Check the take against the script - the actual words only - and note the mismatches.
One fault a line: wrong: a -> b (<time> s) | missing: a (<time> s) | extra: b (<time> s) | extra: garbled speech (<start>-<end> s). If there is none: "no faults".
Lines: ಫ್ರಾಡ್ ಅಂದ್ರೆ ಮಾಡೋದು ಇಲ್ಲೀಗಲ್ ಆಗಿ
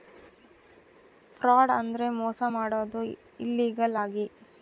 extra: ಮೋಸ (2.2 s)